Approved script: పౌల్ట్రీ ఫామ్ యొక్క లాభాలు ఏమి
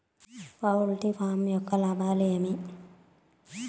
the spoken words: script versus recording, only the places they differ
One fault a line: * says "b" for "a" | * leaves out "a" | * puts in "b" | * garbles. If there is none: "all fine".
all fine